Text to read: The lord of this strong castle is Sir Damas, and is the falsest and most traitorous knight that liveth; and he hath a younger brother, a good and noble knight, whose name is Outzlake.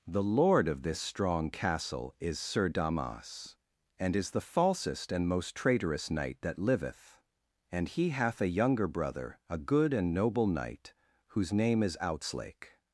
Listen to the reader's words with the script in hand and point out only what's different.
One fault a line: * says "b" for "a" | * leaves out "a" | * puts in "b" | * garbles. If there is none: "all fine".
all fine